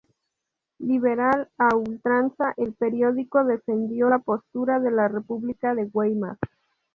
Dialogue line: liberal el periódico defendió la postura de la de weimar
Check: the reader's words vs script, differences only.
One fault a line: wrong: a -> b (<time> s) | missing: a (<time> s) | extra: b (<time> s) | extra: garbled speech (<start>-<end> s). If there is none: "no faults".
extra: a ultranza (1.6 s)
extra: república (5.1 s)